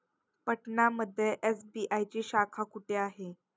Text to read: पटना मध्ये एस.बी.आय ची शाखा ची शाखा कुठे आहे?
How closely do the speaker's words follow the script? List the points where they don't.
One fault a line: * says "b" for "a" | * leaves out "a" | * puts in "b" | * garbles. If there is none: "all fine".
* leaves out "ची शाखा"